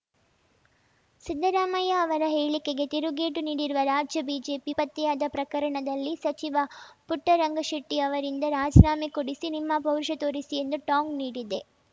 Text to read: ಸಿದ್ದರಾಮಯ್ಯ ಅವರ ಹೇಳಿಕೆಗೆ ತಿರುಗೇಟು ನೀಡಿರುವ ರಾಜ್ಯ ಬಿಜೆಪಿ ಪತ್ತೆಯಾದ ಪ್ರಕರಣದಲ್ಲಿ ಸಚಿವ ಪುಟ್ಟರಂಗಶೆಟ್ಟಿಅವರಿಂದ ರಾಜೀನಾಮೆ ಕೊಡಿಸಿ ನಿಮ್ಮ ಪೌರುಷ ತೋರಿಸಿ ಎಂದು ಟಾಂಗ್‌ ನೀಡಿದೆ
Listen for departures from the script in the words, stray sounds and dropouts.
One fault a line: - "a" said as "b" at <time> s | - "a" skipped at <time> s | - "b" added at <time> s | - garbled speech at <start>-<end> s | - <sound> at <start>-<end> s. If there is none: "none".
none